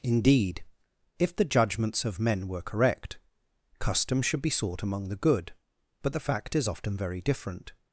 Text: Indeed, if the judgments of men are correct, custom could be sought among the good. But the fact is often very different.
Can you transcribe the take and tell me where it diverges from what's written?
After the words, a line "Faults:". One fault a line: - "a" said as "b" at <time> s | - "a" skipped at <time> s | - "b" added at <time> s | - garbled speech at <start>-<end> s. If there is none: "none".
Indeed, if the judgments of men were correct, custom should be sought among the good. But the fact is often very different.
Faults:
- "are" said as "were" at 2.5 s
- "could" said as "should" at 4.2 s